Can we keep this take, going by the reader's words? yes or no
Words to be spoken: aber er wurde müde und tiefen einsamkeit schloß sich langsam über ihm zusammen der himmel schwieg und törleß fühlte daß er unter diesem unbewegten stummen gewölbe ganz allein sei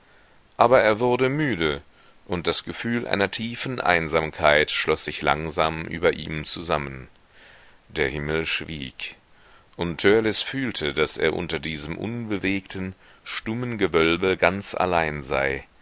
no